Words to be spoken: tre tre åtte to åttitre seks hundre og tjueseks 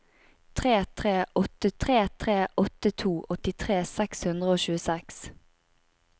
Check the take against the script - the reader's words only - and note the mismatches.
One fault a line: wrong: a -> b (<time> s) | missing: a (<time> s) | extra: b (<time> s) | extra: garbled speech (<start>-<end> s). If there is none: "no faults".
extra: tre tre åtte (1.8 s)